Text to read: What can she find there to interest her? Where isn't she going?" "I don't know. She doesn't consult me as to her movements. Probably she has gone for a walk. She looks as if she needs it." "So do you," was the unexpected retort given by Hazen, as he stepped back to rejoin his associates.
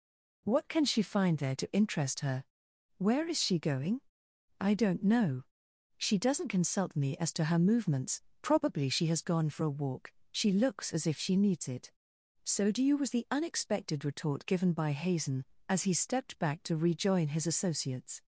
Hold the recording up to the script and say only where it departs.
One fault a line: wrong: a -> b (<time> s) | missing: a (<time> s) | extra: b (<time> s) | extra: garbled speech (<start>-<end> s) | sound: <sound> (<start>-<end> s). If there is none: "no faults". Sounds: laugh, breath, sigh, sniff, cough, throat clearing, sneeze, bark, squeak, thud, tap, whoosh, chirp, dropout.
wrong: isn't -> is (3.3 s)